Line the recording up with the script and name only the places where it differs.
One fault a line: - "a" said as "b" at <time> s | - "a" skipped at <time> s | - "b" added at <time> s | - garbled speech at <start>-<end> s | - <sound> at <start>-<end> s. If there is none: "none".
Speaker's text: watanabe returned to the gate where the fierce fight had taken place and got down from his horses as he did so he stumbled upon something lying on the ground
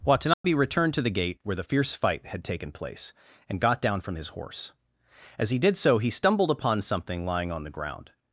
- dropout at 0.3-0.4 s
- "horses" said as "horse" at 4.3 s